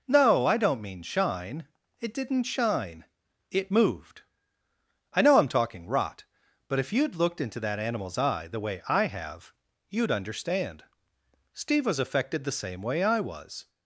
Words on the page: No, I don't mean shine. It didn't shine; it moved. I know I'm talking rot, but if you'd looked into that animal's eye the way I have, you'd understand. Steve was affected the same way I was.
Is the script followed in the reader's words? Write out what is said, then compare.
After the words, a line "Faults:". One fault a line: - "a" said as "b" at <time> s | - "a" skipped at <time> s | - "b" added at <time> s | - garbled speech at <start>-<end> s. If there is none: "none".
No, I don't mean shine. It didn't shine; it moved. I know I'm talking rot, but if you'd looked into that animal's eye the way I have, you'd understand. Steve was affected the same way I was.
Faults:
none